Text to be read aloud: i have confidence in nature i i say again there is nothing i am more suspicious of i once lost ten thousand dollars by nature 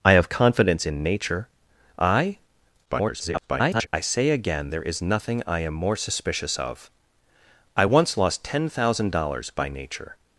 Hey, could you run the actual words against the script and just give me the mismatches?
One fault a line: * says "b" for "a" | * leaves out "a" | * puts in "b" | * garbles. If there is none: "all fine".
* garbles